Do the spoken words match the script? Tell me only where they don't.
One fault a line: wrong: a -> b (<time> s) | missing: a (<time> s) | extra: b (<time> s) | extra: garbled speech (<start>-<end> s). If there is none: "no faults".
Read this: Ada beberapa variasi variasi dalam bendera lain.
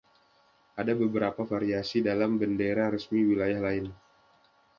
missing: variasi (2.0 s)
extra: resmi wilayah (2.9 s)